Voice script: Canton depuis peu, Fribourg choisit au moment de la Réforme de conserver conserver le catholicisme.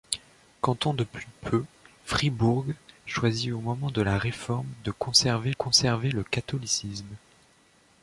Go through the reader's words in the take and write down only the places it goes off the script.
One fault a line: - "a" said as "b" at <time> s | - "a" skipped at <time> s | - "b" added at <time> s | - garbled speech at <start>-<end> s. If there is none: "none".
none